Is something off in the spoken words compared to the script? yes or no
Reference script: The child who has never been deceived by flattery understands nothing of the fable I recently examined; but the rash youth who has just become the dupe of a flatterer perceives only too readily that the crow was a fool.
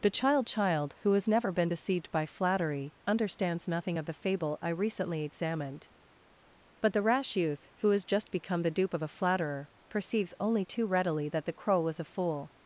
yes